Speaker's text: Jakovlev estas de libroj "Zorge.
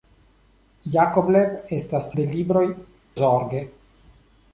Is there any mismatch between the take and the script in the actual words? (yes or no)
no